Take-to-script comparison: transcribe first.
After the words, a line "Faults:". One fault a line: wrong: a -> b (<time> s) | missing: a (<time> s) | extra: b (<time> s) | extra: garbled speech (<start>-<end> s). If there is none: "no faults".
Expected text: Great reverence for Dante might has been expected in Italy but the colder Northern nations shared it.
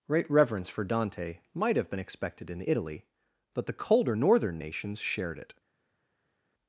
Great reverence for Dante might have been expected in Italy but the colder Northern nations shared it.
Faults:
wrong: has -> have (1.8 s)